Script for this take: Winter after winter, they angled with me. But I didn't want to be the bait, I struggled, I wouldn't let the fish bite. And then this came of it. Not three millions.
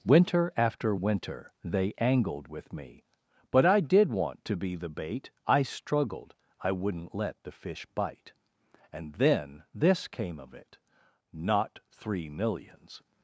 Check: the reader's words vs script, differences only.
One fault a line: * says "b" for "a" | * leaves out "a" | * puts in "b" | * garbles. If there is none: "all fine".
* says "did" for "didn't"